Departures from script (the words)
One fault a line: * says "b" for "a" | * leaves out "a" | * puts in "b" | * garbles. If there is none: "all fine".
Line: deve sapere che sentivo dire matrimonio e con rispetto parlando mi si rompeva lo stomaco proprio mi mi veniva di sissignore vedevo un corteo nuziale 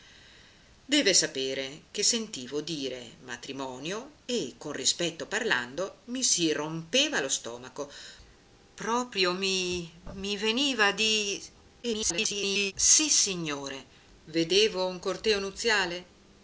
* garbles